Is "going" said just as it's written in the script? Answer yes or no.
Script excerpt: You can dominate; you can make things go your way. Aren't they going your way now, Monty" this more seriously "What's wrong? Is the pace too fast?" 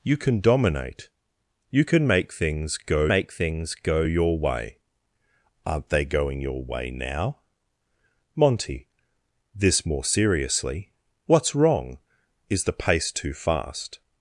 yes